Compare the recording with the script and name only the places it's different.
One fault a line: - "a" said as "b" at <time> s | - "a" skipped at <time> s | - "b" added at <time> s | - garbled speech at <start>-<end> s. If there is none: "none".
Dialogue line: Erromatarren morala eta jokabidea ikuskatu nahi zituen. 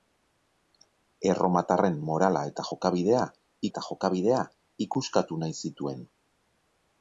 - "eta jokabidea" added at 3.7 s